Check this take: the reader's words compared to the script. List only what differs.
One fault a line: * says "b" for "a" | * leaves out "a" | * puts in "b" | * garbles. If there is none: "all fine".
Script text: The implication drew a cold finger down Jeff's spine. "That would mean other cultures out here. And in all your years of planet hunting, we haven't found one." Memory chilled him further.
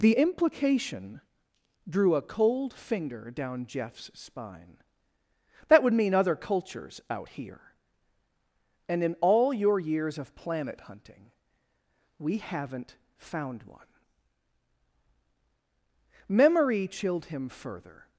all fine